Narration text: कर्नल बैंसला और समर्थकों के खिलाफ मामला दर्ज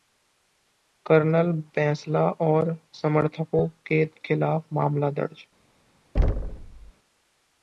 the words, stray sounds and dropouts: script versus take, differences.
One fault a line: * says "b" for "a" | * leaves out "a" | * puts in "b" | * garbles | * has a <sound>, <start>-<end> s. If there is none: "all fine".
* has a thud, 6.1-6.9 s